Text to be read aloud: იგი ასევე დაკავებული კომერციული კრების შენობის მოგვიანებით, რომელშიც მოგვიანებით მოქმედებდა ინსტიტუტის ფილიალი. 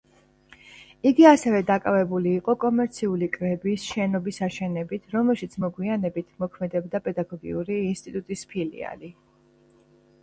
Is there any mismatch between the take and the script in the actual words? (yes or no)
yes